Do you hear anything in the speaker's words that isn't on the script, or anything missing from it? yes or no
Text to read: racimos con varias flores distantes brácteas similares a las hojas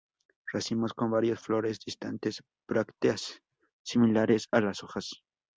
no